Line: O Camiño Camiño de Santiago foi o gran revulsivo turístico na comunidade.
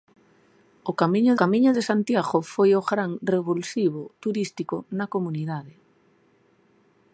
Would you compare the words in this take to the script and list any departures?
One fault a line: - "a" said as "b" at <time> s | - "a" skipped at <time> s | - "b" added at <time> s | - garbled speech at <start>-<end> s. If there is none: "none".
none